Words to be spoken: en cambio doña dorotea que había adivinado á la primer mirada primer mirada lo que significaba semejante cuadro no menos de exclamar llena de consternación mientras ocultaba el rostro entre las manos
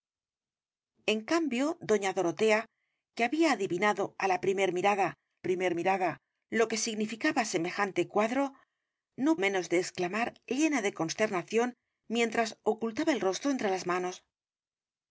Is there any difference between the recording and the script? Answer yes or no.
no